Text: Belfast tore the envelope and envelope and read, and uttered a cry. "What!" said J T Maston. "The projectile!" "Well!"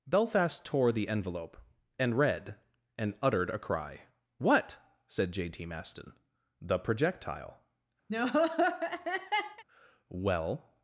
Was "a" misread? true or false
false